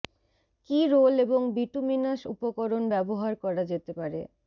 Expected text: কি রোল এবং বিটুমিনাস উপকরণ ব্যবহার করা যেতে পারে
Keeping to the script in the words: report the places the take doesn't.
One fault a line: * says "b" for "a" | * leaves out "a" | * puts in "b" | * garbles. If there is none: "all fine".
all fine